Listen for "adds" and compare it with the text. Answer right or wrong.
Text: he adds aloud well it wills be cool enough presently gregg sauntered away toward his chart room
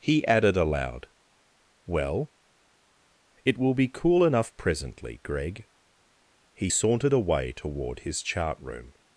wrong